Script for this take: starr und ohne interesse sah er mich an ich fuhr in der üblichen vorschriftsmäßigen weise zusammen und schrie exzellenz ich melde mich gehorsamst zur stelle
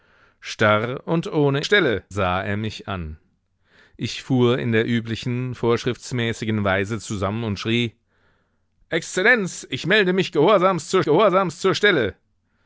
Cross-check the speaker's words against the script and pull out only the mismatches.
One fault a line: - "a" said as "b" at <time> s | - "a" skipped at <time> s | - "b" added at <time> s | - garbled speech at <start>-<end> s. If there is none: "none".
- "interesse" said as "stelle" at 1.6 s
- "gehorsamst zur" added at 11.0 s